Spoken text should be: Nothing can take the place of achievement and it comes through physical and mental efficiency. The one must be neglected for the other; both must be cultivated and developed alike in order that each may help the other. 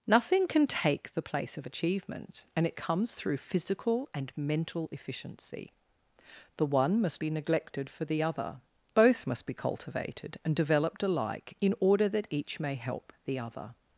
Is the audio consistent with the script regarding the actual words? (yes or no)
yes